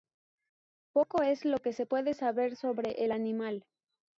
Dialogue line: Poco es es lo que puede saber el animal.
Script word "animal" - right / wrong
right